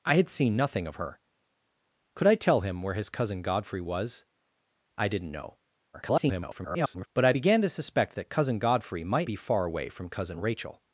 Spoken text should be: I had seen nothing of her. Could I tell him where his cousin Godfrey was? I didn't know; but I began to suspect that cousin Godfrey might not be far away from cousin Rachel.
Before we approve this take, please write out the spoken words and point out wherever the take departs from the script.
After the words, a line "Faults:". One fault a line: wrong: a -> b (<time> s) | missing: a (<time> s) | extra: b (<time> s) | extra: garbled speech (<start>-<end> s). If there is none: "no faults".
I had seen nothing of her. Could I tell him where his cousin Godfrey was? I didn't know; [garbled] but I began to suspect that cousin Godfrey might be far away from cousin Rachel.
Faults:
extra: garbled speech (5.9-7.1 s)
missing: not (9.3 s)